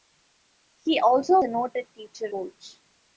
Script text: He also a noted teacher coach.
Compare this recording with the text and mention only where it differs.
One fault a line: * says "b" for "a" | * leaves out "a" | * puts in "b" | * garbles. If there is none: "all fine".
all fine